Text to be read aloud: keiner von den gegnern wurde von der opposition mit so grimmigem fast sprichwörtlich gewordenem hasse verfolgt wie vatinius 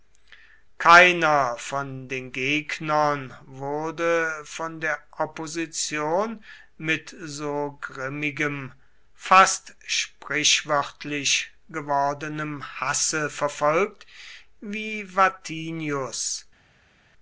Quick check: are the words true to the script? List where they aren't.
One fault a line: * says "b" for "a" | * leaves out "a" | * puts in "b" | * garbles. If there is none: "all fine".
all fine